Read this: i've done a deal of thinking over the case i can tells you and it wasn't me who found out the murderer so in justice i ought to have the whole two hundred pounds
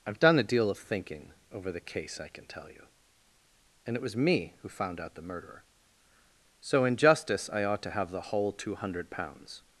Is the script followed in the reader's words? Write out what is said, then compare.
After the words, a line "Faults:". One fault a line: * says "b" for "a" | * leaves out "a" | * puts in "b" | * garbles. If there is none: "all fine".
i've done a deal of thinking over the case i can tell you and it was me who found out the murderer so in justice i ought to have the whole two hundred pounds
Faults:
* says "tell" for "tells"
* says "was" for "wasn't"